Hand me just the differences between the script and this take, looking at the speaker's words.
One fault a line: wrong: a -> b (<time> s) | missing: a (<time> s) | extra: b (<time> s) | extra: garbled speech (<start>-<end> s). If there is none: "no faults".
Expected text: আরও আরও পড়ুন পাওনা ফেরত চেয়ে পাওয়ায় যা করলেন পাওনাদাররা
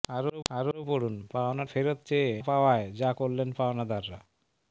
no faults